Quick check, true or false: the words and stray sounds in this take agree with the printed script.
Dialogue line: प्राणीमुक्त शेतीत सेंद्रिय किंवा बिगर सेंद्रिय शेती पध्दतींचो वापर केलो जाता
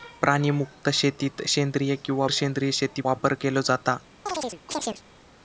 false